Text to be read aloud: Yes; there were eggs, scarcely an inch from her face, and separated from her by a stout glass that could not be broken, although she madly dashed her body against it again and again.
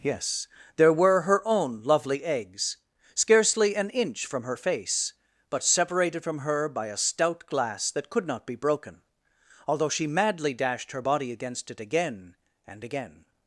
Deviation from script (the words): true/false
true